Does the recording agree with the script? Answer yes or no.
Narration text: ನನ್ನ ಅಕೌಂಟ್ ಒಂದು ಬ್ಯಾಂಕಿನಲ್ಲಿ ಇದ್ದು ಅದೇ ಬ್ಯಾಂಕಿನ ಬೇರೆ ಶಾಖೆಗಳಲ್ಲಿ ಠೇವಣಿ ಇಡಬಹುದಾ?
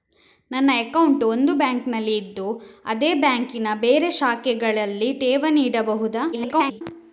no